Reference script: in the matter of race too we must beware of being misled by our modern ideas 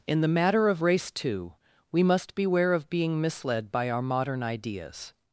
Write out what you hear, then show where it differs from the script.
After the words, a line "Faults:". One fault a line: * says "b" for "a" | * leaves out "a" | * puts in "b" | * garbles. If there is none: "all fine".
in the matter of race too we must beware of being misled by our modern ideas
Faults:
all fine